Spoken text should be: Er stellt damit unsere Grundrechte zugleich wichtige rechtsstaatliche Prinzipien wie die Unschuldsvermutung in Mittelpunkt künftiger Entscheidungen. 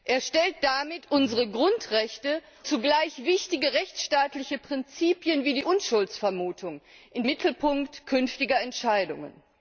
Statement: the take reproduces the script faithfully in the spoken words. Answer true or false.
true